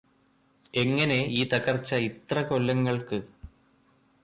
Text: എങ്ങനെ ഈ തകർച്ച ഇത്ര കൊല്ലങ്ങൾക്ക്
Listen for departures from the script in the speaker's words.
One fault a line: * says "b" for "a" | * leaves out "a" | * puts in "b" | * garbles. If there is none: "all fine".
all fine